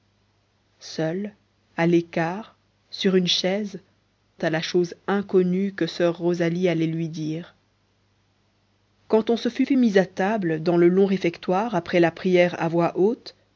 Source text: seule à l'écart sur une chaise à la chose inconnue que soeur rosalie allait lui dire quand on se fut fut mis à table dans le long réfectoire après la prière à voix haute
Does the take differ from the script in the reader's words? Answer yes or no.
no